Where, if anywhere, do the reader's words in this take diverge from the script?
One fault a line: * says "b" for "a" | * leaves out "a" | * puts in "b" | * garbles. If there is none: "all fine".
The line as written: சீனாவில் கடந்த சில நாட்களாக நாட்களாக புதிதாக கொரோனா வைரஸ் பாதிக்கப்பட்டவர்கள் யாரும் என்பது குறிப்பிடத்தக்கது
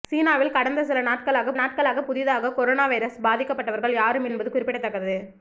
all fine